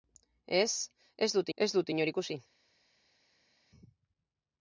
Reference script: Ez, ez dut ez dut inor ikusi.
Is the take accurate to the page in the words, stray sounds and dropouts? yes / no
yes